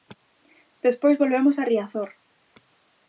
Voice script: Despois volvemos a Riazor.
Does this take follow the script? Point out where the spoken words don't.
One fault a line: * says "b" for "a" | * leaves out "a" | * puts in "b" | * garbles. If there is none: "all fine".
all fine